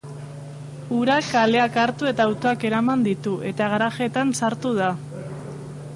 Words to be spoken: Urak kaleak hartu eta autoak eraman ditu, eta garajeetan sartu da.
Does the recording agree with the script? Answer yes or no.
yes